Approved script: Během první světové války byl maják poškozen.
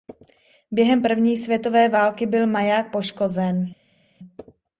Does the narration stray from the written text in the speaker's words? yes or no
no